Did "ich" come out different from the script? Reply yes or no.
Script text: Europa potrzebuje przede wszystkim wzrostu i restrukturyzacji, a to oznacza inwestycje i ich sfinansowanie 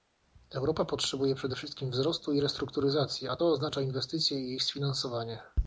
no